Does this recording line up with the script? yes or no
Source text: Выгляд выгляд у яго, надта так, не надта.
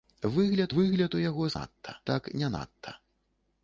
yes